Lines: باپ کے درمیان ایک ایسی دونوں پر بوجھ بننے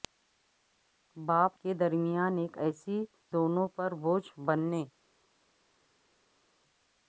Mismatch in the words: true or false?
false